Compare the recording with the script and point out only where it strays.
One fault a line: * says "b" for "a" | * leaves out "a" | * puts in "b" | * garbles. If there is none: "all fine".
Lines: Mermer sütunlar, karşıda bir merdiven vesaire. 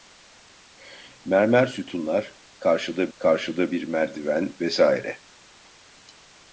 * puts in "karşıda"